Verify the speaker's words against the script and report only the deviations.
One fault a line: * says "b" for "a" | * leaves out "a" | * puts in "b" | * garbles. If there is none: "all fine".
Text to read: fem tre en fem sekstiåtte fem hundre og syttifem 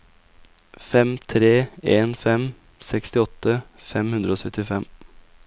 all fine